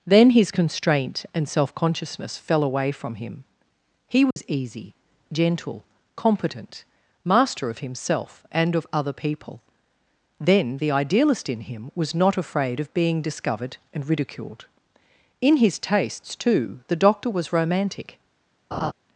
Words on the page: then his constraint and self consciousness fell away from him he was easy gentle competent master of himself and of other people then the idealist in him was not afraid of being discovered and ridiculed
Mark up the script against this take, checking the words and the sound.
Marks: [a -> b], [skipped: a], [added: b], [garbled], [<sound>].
then his constraint and self consciousness fell away from him he was [dropout] easy gentle competent master of himself and of other people then the idealist in him was not afraid of being discovered and ridiculed [added: in his tastes too the doctor was romantic] [laugh]